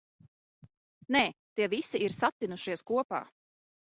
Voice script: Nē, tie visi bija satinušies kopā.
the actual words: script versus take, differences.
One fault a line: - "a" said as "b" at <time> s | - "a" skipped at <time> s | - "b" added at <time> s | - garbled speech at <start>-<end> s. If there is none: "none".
- "bija" said as "ir" at 2.0 s